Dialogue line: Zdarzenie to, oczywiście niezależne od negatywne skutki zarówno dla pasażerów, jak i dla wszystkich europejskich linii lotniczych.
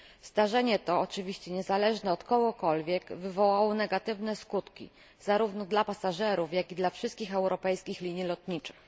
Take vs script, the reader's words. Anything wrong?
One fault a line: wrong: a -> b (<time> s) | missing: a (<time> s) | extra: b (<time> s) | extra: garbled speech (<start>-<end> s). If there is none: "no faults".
extra: kogokolwiek wywołało (2.2 s)